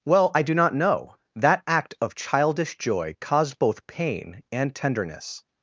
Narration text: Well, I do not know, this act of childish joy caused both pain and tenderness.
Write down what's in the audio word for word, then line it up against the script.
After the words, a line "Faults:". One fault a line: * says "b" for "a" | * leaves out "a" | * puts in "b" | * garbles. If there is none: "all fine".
Well, I do not know, that act of childish joy caused both pain and tenderness.
Faults:
* says "that" for "this"